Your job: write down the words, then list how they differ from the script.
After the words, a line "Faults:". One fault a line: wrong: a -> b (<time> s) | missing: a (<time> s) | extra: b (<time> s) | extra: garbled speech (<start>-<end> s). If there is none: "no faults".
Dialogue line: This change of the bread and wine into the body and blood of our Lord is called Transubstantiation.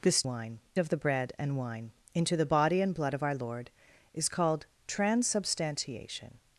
This wine of the bread and wine into the body and blood of our Lord is called Transubstantiation.
Faults:
wrong: change -> wine (0.2 s)